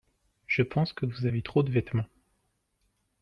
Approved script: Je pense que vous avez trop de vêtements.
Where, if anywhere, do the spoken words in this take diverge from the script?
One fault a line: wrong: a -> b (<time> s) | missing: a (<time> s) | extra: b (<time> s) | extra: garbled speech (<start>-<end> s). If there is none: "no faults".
no faults